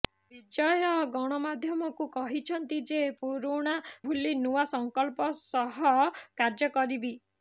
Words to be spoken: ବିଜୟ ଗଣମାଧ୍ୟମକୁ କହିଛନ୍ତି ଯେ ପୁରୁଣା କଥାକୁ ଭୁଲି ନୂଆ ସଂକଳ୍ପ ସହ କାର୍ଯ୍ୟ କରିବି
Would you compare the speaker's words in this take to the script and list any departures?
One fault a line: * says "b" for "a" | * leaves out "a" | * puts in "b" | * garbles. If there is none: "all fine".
* leaves out "କଥାକୁ"